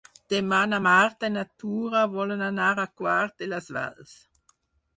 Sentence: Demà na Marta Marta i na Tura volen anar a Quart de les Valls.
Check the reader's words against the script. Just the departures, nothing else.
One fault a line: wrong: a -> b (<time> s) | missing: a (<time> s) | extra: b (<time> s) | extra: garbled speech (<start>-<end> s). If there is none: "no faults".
missing: Marta (1.3 s)